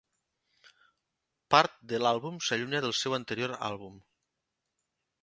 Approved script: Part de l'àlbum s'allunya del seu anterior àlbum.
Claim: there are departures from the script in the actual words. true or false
false